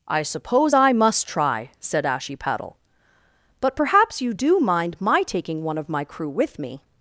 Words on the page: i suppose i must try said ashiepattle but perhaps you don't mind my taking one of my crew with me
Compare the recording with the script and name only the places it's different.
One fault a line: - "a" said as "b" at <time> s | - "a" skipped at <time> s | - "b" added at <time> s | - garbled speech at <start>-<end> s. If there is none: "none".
- "don't" said as "do" at 4.3 s